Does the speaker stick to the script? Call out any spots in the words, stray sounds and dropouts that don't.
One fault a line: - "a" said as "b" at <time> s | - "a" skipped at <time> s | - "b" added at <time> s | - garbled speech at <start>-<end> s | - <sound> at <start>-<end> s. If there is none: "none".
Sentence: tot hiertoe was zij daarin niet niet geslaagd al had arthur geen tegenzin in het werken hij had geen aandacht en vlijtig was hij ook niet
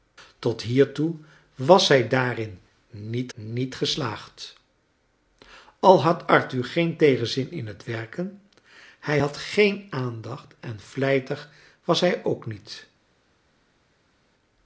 none